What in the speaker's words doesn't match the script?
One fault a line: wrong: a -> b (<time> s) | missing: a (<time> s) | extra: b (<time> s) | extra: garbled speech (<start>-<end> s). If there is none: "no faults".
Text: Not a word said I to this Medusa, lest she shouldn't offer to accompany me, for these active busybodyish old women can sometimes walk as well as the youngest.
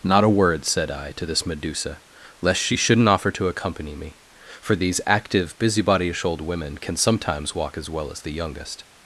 no faults